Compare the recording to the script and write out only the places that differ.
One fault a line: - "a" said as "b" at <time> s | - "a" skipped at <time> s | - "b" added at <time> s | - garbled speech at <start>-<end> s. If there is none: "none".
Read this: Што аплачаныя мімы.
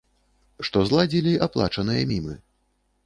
- "зладзілі" added at 0.9 s